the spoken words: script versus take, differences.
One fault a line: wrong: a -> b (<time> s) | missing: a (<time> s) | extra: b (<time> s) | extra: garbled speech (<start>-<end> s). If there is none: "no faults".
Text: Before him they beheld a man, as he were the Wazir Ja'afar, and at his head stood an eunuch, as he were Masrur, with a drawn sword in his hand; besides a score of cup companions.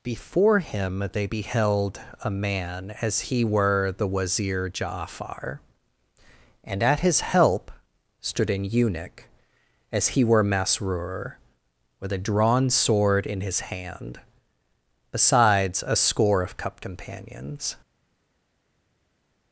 wrong: head -> help (7.2 s)